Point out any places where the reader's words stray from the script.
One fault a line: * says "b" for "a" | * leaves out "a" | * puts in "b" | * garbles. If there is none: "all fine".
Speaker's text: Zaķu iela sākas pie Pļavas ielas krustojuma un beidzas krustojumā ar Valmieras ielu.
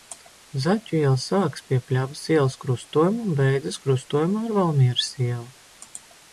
all fine